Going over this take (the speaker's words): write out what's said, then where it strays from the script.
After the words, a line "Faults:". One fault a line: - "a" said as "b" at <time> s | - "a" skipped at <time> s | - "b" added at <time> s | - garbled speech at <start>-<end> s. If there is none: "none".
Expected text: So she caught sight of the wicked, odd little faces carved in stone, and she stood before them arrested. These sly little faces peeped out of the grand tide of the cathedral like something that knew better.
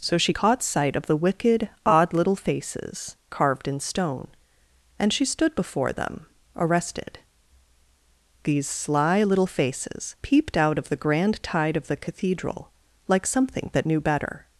So she caught sight of the wicked, odd little faces carved in stone, and she stood before them arrested. These sly little faces peeped out of the grand tide of the cathedral like something that knew better.
Faults:
none